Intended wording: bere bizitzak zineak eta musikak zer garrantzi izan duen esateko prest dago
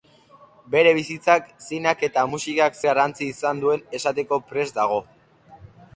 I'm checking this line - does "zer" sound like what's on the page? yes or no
no